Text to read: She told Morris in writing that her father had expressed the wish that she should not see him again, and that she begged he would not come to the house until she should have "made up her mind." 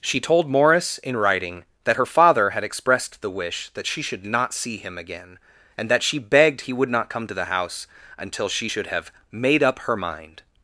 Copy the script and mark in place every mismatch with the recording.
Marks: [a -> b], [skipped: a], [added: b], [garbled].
She told Morris in writing that her father had expressed the wish that she should not see him again, and that she begged he would not come to the house until she should have "made up her mind."